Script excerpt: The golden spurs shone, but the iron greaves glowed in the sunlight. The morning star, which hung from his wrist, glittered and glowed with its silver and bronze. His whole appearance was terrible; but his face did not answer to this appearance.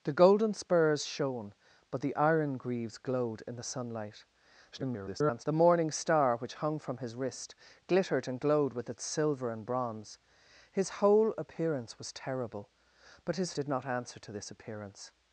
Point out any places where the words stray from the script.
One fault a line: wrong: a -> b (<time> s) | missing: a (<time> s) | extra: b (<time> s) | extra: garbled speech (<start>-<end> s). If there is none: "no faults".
extra: garbled speech (4.7-5.4 s)
missing: face (13.5 s)